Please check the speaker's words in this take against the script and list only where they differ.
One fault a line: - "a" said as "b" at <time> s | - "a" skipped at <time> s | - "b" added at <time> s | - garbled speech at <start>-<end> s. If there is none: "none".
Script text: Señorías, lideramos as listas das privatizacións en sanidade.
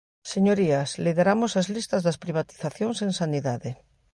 none